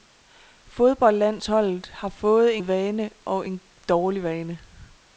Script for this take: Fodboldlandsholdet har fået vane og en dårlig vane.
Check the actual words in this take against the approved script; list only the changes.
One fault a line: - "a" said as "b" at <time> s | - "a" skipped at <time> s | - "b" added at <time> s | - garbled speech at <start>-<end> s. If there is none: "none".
none